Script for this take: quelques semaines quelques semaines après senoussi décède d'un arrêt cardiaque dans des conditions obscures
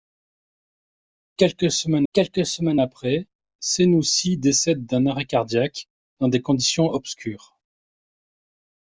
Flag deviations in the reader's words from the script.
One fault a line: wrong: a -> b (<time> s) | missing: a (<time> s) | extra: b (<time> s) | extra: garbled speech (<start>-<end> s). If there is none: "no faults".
no faults